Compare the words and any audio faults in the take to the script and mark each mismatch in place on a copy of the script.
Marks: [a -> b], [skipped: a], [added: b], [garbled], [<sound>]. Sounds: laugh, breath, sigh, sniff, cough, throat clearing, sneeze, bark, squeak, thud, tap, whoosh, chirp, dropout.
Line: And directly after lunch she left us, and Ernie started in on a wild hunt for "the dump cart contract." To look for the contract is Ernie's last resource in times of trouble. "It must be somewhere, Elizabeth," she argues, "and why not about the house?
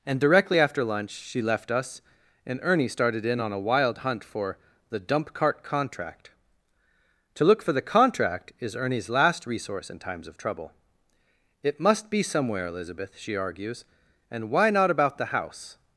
And directly after lunch she left us, and Ernie started in on a wild hunt for "the dump cart contract." To look for the contract is Ernie's last resource in times of trouble. "It must be somewhere, Elizabeth," she argues, "and why not about the house?